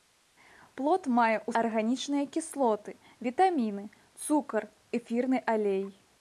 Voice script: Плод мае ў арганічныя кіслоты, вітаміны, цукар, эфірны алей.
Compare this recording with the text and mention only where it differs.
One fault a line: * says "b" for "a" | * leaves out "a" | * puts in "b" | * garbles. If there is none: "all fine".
all fine